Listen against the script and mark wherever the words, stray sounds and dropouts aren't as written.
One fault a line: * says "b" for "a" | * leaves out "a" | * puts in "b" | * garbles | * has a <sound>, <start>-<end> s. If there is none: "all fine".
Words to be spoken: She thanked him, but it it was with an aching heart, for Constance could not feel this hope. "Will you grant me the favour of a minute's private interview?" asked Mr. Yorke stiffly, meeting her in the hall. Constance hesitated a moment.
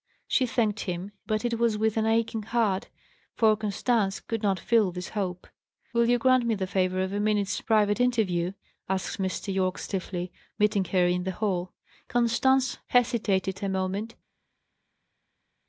* leaves out "it"